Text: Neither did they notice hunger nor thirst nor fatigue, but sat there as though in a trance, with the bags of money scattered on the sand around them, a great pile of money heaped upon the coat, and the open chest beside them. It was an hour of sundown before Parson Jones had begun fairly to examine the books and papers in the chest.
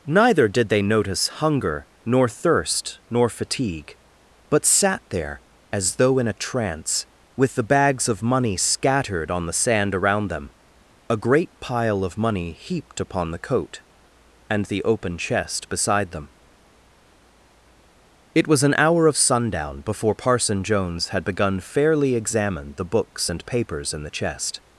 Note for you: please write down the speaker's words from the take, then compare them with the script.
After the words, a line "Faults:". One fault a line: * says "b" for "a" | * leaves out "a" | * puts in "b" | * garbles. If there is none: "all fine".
Neither did they notice hunger nor thirst nor fatigue, but sat there as though in a trance, with the bags of money scattered on the sand around them, a great pile of money heaped upon the coat, and the open chest beside them. It was an hour of sundown before Parson Jones had begun fairly examine the books and papers in the chest.
Faults:
* leaves out "to"